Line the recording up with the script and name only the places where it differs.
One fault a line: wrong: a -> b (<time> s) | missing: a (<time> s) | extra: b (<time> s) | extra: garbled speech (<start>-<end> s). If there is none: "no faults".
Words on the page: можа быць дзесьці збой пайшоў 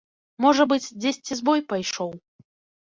no faults